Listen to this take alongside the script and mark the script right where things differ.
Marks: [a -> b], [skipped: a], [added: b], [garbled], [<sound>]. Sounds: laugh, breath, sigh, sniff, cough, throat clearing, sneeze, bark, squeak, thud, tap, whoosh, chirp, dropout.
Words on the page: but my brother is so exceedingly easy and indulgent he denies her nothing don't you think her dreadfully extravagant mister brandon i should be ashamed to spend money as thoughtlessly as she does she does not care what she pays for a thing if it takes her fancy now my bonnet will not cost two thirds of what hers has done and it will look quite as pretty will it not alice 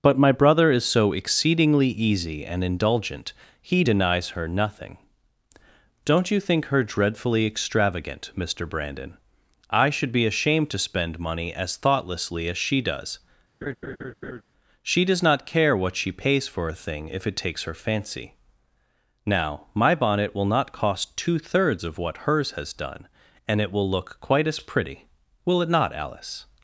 but my brother is so exceedingly easy and indulgent he denies her nothing don't you think her dreadfully extravagant mister brandon i should be ashamed to spend money as thoughtlessly as she does [laugh] she does not care what she pays for a thing if it takes her fancy now my bonnet will not cost two thirds of what hers has done and it will look quite as pretty will it not alice